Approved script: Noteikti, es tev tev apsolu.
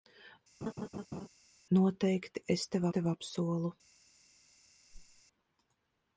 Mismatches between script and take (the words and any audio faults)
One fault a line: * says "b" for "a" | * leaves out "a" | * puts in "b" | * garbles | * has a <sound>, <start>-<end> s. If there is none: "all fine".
* has a laugh, 0.6-1.3 s
* has a whoosh, 4.9-5.2 s